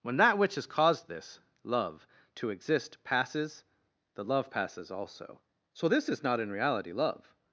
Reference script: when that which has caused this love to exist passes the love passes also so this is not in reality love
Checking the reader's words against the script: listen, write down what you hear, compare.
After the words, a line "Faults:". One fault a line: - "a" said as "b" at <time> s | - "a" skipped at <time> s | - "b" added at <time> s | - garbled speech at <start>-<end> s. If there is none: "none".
when that which has caused this love to exist passes the love passes also so this is not in reality love
Faults:
none